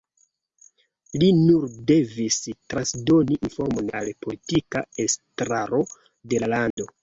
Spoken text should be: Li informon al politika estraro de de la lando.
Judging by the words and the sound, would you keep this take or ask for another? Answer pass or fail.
fail